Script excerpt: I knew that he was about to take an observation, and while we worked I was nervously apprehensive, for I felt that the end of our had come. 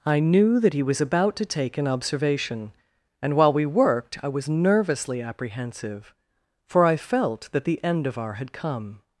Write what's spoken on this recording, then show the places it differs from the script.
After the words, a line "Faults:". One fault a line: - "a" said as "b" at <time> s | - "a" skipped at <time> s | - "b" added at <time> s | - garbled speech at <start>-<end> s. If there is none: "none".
I knew that he was about to take an observation, and while we worked I was nervously apprehensive, for I felt that the end of our had come.
Faults:
none